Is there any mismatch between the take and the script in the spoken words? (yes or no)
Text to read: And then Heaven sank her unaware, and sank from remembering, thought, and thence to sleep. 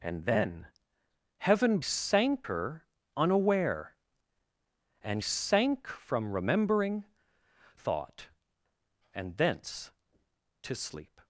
no